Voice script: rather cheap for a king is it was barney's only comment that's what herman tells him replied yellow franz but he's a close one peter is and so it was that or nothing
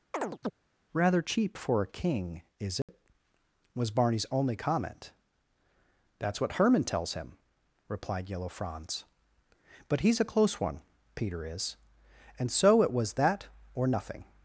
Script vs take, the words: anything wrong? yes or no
no